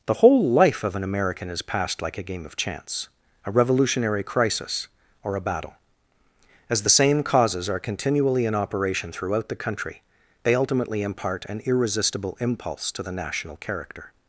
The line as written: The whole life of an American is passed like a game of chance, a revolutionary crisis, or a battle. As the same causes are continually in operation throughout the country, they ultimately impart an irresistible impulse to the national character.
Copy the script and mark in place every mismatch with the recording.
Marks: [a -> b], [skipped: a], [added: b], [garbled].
The whole life of an American is passed like a game of chance, a revolutionary crisis, or a battle. As the same causes are continually in operation throughout the country, they ultimately impart an irresistible impulse to the national character.